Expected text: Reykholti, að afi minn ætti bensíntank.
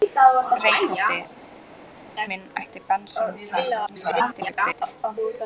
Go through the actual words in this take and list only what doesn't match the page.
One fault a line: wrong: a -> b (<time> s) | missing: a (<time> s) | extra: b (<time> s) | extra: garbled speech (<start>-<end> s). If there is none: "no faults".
missing: að afi (1.2 s)
extra: garbled speech (3.9-4.8 s)